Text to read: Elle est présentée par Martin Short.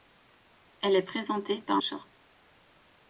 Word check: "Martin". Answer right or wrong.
wrong